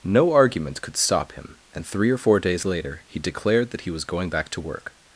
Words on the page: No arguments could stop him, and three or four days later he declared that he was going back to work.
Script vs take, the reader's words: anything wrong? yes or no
no